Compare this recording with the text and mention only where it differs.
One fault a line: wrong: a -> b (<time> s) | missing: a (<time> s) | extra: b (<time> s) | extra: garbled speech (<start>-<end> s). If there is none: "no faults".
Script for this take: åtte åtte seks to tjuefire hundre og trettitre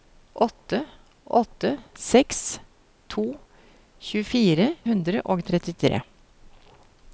no faults